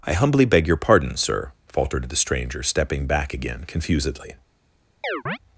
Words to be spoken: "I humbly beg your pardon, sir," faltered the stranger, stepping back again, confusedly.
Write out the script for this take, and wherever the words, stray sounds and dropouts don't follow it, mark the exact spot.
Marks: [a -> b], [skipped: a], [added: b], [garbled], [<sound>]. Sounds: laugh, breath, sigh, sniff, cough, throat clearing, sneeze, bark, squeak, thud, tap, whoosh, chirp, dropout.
"I humbly beg your pardon, sir," faltered the stranger, stepping back again, confusedly. [chirp]